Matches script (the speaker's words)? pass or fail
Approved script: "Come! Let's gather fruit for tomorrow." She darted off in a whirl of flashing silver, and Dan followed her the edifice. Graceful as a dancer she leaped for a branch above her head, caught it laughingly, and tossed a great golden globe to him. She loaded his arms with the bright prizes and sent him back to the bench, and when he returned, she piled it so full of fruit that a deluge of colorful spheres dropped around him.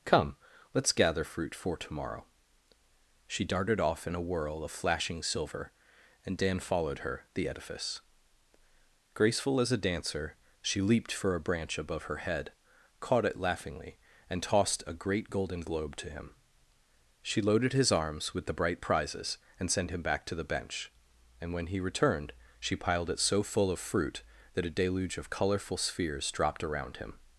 pass